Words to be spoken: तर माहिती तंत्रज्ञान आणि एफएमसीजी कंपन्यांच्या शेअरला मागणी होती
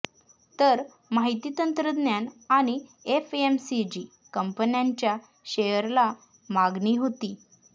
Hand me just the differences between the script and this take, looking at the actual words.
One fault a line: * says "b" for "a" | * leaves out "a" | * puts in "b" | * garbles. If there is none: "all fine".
all fine